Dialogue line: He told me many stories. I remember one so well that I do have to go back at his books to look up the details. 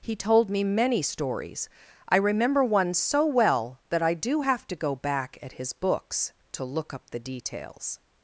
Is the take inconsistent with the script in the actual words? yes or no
no